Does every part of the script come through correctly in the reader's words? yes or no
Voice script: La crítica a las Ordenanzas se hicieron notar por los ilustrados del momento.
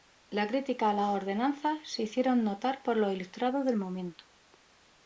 yes